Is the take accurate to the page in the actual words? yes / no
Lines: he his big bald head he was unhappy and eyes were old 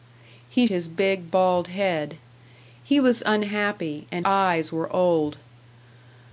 yes